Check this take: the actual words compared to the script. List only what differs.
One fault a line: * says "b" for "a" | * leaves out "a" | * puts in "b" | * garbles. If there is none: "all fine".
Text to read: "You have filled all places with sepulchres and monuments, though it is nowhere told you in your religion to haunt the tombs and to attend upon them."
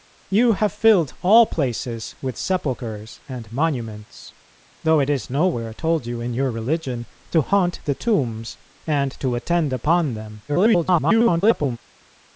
* garbles